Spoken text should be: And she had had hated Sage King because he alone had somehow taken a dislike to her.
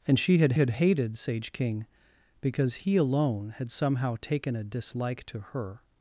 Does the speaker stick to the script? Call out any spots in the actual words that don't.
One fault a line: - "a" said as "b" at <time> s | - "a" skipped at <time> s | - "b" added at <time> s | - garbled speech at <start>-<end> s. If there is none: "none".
none